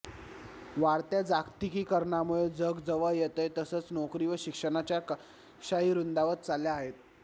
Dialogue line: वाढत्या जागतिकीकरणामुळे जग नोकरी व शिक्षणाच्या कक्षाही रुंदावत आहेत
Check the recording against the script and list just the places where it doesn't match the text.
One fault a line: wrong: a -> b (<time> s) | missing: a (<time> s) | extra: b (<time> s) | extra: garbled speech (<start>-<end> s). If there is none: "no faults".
extra: जवळ येतंय तसंच (2.9 s)
extra: चालल्या (6.5 s)